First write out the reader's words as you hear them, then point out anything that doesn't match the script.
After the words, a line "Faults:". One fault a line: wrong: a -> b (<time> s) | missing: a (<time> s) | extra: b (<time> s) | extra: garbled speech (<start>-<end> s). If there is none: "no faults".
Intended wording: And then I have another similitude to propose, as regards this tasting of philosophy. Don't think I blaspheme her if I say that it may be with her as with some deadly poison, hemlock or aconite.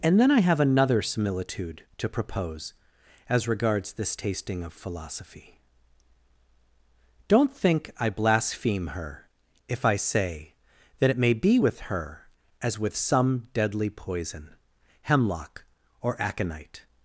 And then I have another similitude to propose, as regards this tasting of philosophy. Don't think I blaspheme her if I say that it may be with her as with some deadly poison, hemlock or aconite.
Faults:
no faults